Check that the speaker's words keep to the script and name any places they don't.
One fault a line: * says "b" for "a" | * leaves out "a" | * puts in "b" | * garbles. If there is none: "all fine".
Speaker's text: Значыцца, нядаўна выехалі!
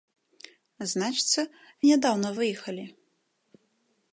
all fine